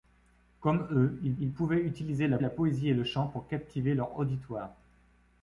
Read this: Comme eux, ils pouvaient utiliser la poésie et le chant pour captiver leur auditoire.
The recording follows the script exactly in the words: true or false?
false